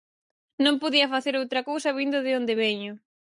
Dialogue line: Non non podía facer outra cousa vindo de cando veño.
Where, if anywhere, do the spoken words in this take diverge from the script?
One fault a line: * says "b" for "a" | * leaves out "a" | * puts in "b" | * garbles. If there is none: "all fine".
* leaves out "non"
* says "onde" for "cando"